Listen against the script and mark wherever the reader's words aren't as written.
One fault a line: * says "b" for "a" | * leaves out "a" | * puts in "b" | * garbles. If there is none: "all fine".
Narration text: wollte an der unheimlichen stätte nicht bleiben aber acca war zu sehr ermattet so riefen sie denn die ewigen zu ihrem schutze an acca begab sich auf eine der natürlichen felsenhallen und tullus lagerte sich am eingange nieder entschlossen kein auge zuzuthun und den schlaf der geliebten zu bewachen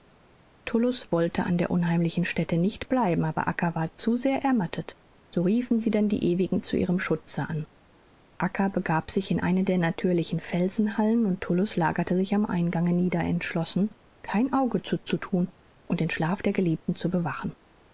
* says "in" for "auf"